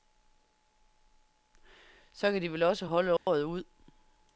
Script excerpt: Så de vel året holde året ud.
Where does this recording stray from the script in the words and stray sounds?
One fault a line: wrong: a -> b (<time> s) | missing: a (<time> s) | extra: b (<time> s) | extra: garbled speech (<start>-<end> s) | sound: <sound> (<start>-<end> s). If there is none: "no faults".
extra: kan (2.3 s)
wrong: året -> også (2.6 s)
sound: dropout (3.2-3.3 s)